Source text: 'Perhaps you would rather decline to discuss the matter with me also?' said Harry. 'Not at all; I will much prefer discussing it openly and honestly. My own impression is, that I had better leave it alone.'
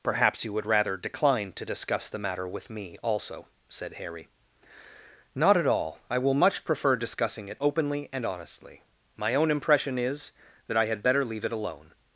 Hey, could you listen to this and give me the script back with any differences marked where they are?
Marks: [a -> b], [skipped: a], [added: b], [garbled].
'Perhaps you would rather decline to discuss the matter with me also?' said Harry. 'Not at all; I will much prefer discussing it openly and honestly. My own impression is, that I had better leave it alone.'